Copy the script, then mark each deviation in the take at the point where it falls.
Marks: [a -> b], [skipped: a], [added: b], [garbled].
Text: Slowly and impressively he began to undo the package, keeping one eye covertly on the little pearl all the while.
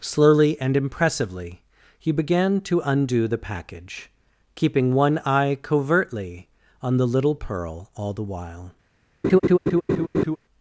Slowly and impressively he began to undo the package, keeping one eye covertly on the little pearl all the while.